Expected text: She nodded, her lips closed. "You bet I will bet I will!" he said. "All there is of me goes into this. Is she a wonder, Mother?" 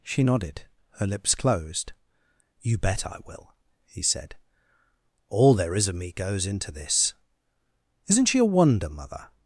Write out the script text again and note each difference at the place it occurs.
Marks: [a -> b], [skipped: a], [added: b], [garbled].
She nodded, her lips closed. "You bet I will [skipped: bet I will!"] he said. "All there is of me goes into this. [Is -> Isn't] she a wonder, Mother?"